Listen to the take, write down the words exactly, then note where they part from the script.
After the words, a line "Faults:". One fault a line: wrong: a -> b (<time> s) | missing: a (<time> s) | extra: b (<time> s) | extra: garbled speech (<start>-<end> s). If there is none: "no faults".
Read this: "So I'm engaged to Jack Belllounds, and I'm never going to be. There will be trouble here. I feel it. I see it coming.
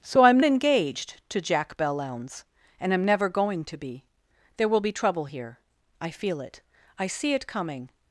"So I'm engaged to Jack Belllounds, and I'm never going to be. There will be trouble here. I feel it. I see it coming.
Faults:
no faults